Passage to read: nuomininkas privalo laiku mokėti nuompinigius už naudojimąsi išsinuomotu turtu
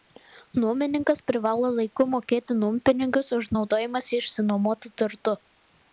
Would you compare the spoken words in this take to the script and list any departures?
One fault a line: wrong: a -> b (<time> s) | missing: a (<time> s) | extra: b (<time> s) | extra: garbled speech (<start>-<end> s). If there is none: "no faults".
no faults